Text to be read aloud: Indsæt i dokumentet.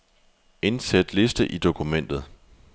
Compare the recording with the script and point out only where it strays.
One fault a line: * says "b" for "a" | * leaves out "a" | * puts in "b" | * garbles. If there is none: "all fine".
* puts in "liste"